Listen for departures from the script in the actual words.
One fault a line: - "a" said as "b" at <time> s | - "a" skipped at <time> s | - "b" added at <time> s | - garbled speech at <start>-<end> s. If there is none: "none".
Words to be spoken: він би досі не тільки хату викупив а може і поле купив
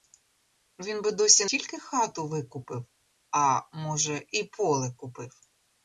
- "не" skipped at 1.4 s